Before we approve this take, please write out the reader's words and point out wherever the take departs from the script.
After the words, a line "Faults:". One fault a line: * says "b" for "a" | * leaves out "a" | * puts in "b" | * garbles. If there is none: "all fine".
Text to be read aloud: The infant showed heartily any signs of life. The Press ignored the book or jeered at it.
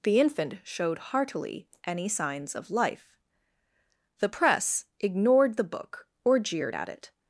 The infant showed heartily any signs of life. The Press ignored the book or jeered at it.
Faults:
all fine